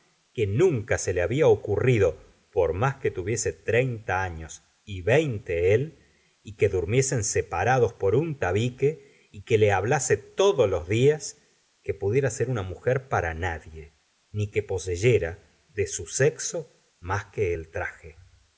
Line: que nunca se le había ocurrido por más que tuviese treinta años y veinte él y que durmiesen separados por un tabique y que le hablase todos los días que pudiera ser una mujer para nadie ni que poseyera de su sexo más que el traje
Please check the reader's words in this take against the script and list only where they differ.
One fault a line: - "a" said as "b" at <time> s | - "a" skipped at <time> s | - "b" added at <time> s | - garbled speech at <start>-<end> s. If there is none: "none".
none